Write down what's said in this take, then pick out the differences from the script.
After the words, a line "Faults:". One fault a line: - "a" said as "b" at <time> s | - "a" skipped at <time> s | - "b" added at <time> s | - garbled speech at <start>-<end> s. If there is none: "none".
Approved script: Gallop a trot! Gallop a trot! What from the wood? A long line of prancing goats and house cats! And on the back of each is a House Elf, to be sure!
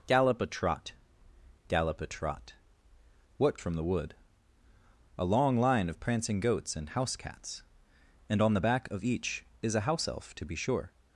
Gallop a trot! Gallop a trot! What from the wood? A long line of prancing goats and house cats! And on the back of each is a House Elf, to be sure!
Faults:
none